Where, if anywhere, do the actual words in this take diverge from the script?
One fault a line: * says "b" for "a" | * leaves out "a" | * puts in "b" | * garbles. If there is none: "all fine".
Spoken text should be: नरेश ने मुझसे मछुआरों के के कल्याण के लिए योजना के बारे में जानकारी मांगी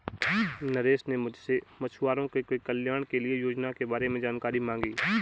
all fine